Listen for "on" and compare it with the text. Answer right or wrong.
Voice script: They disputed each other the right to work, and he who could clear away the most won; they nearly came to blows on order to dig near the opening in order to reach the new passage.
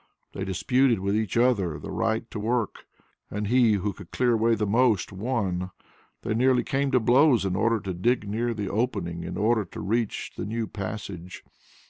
wrong